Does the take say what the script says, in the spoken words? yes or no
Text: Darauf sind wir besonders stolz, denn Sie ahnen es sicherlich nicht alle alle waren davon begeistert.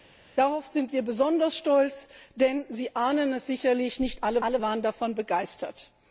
yes